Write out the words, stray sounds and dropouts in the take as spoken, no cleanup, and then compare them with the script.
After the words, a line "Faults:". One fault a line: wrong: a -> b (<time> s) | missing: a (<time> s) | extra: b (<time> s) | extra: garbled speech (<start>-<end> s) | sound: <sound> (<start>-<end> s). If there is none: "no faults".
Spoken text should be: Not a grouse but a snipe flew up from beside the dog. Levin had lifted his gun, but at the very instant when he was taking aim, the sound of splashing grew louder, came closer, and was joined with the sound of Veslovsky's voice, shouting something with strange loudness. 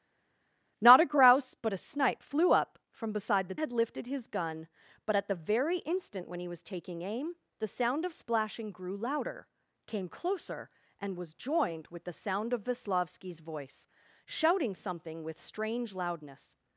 Not a grouse but a snipe flew up from beside the had lifted his gun, but at the very instant when he was taking aim, the sound of splashing grew louder, came closer, and was joined with the sound of Veslovsky's voice, shouting something with strange loudness.
Faults:
missing: dog Levin (3.5 s)